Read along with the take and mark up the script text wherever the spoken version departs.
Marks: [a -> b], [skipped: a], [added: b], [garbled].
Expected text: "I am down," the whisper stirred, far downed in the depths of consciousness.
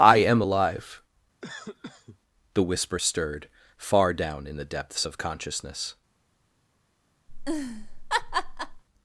"I am [down," -> alive] the whisper stirred, far [downed -> down] in the depths of consciousness.